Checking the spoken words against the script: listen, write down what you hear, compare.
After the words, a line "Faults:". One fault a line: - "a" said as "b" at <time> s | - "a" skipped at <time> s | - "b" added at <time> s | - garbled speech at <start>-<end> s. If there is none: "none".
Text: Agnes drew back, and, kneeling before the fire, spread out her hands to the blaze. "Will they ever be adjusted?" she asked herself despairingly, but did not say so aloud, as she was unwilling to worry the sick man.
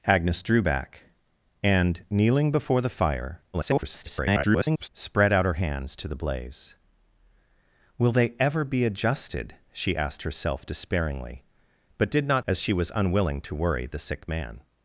Agnes drew back, and, kneeling before the fire, [garbled] spread out her hands to the blaze. "Will they ever be adjusted?" she asked herself despairingly, but did not as she was unwilling to worry the sick man.
Faults:
- garbled speech at 3.5-4.9 s
- "say so aloud" skipped at 12.4 s